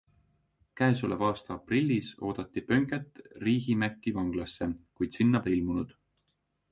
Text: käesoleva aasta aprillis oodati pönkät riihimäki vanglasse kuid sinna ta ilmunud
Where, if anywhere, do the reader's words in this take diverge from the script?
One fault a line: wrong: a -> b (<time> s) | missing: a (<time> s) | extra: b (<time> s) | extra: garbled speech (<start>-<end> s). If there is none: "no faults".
no faults